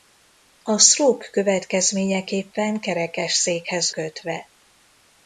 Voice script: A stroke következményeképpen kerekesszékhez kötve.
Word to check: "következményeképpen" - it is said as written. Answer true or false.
true